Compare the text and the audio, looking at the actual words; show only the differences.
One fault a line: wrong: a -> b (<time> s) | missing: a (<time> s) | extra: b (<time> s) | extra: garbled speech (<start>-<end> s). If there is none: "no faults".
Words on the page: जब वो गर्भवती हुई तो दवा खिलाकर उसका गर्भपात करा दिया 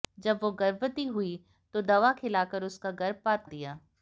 missing: करा (3.5 s)